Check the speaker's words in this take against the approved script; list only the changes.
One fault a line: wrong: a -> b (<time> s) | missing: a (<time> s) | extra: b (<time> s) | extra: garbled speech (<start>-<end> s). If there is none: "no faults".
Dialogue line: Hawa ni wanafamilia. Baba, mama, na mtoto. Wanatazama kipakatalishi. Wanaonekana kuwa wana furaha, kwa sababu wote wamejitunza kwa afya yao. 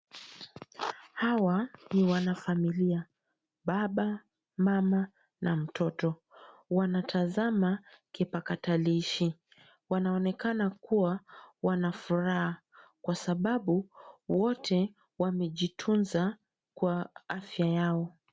no faults